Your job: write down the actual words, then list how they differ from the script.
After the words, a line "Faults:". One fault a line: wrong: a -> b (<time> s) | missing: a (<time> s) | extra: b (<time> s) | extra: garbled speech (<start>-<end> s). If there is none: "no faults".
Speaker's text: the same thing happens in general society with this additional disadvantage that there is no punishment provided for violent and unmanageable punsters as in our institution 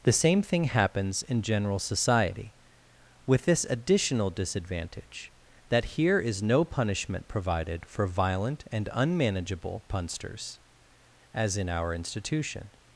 the same thing happens in general society with this additional disadvantage that here is no punishment provided for violent and unmanageable punsters as in our institution
Faults:
wrong: there -> here (5.8 s)